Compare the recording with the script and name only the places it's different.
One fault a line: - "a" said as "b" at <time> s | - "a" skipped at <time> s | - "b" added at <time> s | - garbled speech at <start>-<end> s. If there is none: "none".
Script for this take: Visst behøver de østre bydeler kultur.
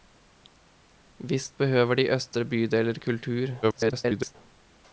- garbled speech at 3.6-4.4 s